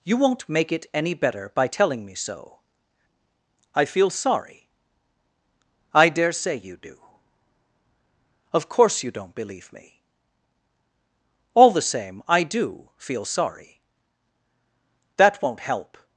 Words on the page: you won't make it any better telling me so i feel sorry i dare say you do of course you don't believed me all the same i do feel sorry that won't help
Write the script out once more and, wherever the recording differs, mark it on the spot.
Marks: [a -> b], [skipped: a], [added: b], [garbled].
you won't make it any better [added: by] telling me so i feel sorry i dare say you do of course you don't [believed -> believe] me all the same i do feel sorry that won't help